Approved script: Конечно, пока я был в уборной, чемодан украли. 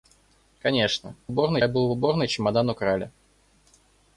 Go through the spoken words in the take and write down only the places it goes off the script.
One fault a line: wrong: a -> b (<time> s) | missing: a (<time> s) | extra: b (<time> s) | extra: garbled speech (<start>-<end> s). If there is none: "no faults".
wrong: пока -> уборной (1.3 s)